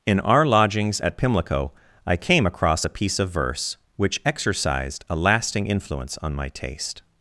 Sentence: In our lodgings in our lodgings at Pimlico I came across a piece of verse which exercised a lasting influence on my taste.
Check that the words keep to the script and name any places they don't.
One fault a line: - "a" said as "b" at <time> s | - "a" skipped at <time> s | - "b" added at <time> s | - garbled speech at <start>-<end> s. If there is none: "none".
- "in our lodgings" skipped at 1.0 s